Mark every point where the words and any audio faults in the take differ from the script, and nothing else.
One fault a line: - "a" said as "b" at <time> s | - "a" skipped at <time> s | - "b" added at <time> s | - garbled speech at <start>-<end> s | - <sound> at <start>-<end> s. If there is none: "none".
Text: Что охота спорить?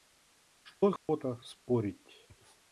- dropout at 1.0-1.1 s